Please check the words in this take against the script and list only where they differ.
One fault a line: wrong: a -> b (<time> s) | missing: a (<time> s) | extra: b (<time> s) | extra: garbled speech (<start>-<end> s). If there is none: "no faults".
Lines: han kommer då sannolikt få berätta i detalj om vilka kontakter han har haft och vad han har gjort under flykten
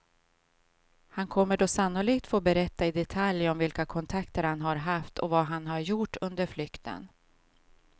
no faults